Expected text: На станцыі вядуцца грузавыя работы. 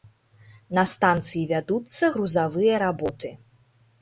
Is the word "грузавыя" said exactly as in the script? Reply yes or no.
yes